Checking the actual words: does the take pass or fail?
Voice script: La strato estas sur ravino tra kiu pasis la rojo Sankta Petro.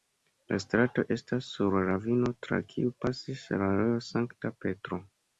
pass